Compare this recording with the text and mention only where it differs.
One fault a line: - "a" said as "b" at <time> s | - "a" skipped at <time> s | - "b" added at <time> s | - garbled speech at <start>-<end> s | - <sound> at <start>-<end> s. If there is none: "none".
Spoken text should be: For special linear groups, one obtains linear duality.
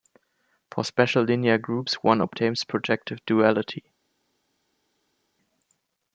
- "linear" said as "projective" at 2.6 s